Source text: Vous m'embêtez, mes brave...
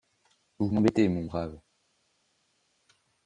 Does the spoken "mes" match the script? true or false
false